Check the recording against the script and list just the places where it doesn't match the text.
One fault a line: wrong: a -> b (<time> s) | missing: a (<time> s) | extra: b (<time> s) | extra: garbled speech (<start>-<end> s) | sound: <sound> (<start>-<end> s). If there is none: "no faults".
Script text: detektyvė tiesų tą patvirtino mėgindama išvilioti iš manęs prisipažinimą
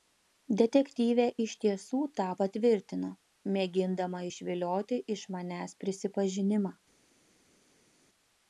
extra: iš (1.4 s)